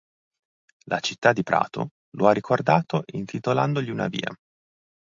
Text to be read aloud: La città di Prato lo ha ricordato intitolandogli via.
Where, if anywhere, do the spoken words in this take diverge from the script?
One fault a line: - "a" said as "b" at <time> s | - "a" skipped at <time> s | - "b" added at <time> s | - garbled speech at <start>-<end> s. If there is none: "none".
- "una" added at 3.9 s